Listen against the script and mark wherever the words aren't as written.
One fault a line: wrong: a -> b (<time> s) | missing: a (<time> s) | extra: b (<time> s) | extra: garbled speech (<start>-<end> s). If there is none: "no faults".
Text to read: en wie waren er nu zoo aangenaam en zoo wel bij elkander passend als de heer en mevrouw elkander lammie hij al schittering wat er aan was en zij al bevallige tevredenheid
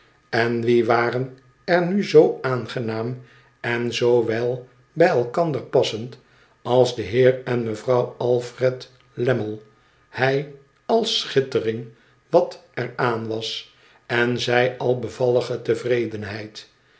wrong: elkander -> alfred (8.2 s)